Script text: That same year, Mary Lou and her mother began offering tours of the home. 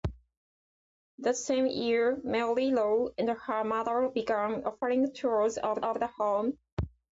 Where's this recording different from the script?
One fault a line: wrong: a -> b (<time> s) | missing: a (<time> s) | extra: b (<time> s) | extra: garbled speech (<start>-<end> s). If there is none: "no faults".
extra: of (5.8 s)